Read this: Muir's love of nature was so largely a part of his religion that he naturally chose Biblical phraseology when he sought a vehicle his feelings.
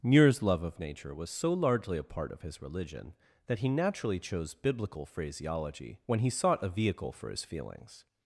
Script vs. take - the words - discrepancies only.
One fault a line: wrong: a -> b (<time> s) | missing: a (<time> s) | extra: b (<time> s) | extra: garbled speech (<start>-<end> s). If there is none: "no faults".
extra: for (7.1 s)